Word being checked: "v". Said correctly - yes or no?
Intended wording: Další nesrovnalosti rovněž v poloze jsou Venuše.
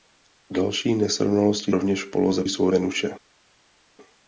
yes